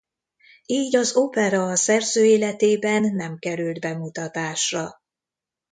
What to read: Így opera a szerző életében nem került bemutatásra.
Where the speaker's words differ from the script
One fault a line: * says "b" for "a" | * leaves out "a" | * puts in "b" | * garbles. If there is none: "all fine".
* puts in "az"